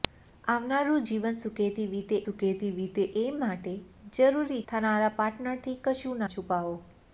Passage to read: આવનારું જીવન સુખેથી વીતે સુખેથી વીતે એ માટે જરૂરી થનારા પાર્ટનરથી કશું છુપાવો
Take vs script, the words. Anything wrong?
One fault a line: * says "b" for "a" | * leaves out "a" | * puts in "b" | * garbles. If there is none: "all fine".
all fine